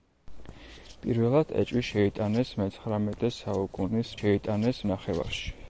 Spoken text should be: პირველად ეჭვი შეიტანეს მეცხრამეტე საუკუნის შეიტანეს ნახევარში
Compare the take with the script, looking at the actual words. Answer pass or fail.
pass